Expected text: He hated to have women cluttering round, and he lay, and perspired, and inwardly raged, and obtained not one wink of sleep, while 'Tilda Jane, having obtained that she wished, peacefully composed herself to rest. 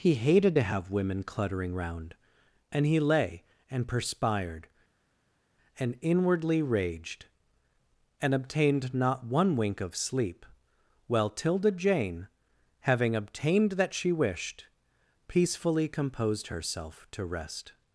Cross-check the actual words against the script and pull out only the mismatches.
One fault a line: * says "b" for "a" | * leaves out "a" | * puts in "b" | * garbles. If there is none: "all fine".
all fine